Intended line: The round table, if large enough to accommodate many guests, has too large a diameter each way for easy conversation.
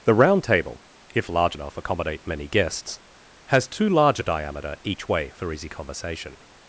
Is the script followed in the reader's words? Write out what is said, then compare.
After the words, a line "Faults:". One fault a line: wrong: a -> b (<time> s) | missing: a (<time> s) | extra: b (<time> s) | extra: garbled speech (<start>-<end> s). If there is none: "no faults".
The round table, if large enough accommodate many guests, has too large a diameter each way for easy conversation.
Faults:
missing: to (1.8 s)